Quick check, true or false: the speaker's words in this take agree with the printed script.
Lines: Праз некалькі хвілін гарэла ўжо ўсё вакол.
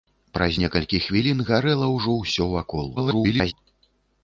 false